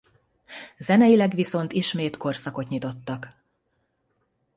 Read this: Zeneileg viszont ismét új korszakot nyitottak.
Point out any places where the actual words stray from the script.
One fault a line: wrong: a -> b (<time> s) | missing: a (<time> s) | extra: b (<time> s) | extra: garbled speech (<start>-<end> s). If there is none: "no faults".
missing: új (2.2 s)